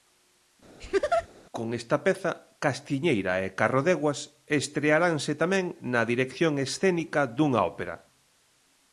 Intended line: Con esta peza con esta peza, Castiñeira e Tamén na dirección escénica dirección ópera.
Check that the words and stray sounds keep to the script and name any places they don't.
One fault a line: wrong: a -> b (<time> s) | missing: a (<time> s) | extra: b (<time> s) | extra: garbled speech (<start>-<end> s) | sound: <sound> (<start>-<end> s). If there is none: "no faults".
sound: laugh (0.8-1.3 s)
wrong: con esta peza Castiñeira e -> Castiñeira e Carrodeguas estrearanse (2.6 s)
wrong: dirección -> dunha (7.4 s)